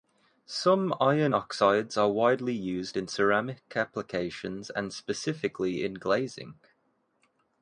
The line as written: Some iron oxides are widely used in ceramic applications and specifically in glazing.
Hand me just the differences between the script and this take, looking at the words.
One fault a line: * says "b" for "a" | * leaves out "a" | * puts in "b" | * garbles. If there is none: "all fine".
all fine